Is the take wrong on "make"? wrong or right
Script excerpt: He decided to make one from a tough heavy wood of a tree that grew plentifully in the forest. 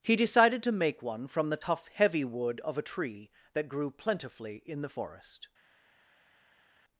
right